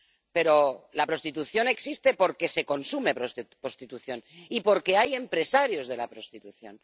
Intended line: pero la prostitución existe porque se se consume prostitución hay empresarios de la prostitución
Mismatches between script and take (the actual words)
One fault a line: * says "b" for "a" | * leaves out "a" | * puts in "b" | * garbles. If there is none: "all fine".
* leaves out "se"
* puts in "y porque"